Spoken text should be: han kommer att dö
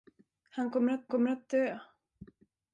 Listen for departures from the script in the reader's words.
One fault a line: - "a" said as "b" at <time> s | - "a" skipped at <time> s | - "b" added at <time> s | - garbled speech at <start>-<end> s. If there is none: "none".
- "kommer att" added at 1.1 s